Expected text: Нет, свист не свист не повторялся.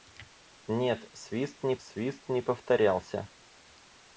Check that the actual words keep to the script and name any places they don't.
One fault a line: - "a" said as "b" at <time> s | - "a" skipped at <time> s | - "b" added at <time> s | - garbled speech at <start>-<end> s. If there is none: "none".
none